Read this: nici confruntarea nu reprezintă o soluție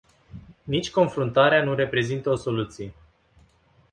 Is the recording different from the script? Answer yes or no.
no